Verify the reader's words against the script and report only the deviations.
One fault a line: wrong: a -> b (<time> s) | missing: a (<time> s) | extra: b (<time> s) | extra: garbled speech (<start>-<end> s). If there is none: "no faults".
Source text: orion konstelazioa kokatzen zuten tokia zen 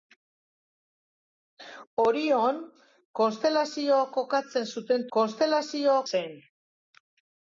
wrong: tokia -> konstelazioa (5.2 s)